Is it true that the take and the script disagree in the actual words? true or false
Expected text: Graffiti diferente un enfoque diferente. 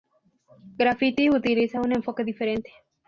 true